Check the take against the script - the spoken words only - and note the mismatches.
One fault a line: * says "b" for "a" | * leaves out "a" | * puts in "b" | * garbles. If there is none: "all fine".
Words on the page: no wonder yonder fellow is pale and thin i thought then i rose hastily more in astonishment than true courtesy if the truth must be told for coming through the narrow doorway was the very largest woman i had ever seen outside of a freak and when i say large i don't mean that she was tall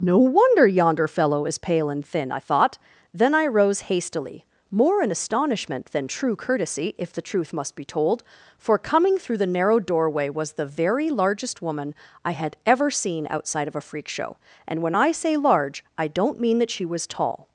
* puts in "show"